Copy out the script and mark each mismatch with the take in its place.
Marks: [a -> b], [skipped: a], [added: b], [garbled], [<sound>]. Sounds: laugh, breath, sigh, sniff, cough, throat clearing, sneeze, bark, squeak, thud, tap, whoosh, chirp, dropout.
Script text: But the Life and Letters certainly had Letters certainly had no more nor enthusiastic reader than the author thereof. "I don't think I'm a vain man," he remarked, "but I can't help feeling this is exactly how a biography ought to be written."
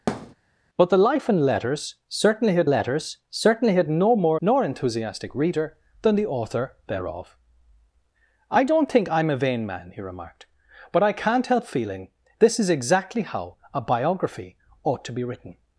[thud] But the Life and Letters certainly had Letters certainly had no more nor enthusiastic reader than the author thereof. "I don't think I'm a vain man," he remarked, "but I can't help feeling this is exactly how a biography ought to be written."